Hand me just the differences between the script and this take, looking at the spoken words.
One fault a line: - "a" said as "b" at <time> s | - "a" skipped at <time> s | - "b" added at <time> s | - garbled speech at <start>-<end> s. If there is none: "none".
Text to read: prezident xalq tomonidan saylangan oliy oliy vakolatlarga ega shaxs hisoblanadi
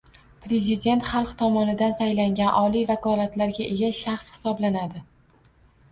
- "oliy" skipped at 2.9 s